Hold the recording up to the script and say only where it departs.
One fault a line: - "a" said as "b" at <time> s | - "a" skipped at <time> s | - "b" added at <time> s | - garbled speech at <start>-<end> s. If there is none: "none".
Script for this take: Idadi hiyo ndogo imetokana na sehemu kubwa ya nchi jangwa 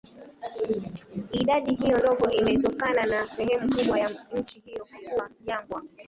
- "hiyo kuwa" added at 4.6 s